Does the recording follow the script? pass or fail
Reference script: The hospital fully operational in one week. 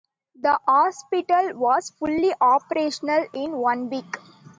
fail